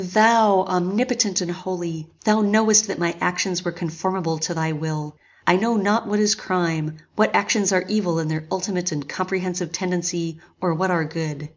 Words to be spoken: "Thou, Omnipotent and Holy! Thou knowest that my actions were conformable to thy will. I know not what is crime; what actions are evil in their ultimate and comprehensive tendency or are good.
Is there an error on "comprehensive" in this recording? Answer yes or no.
no